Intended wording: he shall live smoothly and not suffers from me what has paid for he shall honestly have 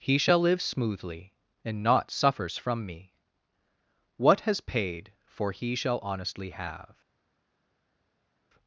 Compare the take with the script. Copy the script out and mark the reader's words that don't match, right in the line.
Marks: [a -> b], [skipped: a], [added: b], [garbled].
he shall live smoothly and not suffers from me what has paid for he shall honestly have